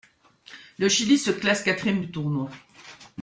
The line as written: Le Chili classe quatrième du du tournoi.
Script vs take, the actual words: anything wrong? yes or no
yes